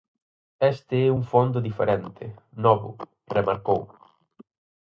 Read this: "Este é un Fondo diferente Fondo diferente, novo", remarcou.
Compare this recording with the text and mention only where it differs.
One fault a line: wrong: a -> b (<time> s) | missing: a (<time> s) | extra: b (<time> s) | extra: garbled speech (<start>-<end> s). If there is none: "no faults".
missing: Fondo diferente (2.2 s)